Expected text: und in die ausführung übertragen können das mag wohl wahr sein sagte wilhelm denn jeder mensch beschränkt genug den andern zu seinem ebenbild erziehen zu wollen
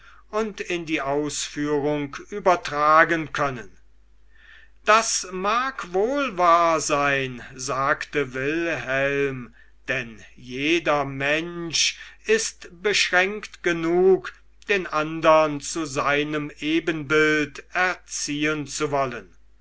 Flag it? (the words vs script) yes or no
yes